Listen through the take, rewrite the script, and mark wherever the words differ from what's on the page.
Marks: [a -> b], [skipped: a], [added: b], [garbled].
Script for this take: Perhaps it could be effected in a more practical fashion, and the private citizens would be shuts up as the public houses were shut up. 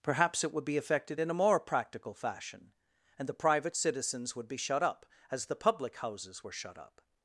Perhaps it [could -> would] be effected in a more practical fashion, and the private citizens would be [shuts -> shut] up as the public houses were shut up.